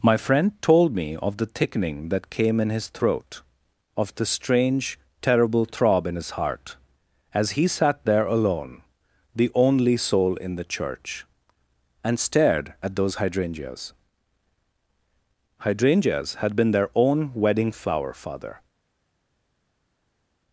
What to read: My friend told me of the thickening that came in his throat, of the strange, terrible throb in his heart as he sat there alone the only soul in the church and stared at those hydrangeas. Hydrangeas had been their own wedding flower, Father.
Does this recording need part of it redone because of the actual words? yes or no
no